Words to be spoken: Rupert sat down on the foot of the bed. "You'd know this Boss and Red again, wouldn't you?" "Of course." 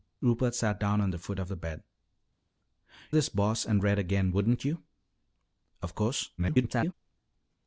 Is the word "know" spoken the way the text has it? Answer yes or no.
no